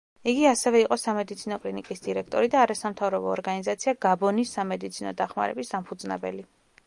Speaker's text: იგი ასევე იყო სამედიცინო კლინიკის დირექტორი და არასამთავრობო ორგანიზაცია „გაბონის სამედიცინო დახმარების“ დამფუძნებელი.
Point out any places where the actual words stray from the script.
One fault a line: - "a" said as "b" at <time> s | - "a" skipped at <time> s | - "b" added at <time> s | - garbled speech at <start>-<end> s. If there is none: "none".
none